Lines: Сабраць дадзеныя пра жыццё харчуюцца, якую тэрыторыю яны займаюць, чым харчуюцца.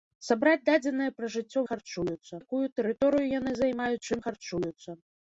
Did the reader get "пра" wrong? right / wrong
right